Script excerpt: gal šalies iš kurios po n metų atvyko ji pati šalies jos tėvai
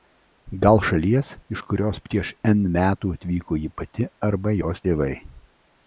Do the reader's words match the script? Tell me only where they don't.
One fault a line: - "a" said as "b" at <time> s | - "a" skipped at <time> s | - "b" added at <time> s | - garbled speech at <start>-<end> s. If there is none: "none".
- "po" said as "prieš" at 2.1 s
- "šalies" said as "arba" at 4.3 s